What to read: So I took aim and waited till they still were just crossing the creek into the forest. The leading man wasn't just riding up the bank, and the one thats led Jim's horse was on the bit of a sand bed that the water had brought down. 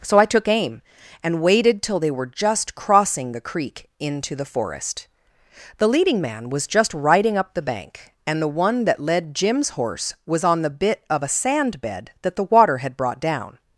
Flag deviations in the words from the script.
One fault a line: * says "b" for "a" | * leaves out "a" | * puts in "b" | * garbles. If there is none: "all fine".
* leaves out "still"
* says "was" for "wasn't"
* says "that" for "thats"